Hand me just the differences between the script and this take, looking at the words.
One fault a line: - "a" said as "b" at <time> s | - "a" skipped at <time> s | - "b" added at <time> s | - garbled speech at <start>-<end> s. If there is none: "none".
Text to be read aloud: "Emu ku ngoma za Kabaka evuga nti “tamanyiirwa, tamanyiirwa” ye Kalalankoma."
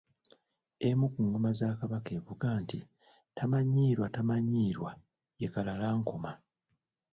none